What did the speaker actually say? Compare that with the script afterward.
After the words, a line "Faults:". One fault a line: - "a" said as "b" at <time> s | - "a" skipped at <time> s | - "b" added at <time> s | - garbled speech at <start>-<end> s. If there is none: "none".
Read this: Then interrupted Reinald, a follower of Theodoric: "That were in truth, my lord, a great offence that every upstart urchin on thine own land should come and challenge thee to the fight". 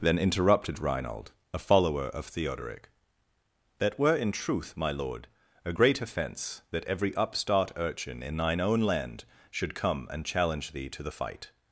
Then interrupted Reinald, a follower of Theodoric: "That were in truth, my lord, a great offence that every upstart urchin in thine own land should come and challenge thee to the fight".
Faults:
- "on" said as "in" at 8.2 s